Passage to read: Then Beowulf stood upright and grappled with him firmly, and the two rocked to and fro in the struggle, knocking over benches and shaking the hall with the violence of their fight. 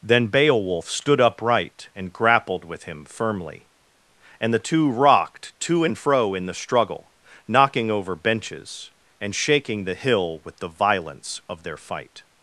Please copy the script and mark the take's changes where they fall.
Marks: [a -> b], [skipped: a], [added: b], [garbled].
Then Beowulf stood upright and grappled with him firmly, and the two rocked to and fro in the struggle, knocking over benches and shaking the [hall -> hill] with the violence of their fight.